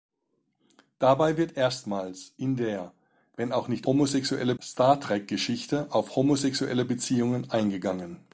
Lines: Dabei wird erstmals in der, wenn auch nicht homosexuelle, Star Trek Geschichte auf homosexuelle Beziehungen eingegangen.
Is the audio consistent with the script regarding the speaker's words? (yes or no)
yes